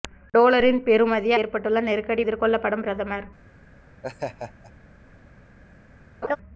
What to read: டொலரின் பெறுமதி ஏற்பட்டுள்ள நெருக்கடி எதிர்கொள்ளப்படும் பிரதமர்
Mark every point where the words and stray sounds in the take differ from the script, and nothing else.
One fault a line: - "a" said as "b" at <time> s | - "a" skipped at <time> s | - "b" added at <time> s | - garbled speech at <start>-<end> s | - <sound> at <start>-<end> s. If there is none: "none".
- laugh at 4.0-4.7 s
- laugh at 6.2-6.4 s